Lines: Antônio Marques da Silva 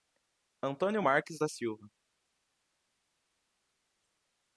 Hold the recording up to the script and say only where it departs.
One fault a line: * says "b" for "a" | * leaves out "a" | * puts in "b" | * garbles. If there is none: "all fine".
all fine